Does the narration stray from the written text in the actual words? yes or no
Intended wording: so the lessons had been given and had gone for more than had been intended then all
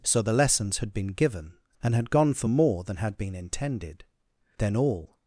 no